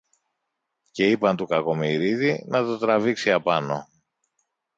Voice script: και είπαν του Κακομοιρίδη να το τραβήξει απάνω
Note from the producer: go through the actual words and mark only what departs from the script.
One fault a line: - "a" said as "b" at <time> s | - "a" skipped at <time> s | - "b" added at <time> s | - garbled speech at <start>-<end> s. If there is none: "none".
none